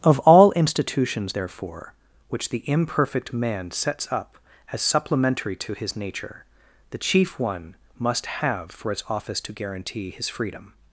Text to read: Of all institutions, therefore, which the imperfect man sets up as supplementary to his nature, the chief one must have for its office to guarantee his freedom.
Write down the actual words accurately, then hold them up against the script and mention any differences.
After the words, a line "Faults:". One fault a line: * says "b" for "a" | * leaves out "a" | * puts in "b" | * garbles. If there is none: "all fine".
Of all institutions, therefore, which the imperfect man sets up as supplementary to his nature, the chief one must have for its office to guarantee his freedom.
Faults:
all fine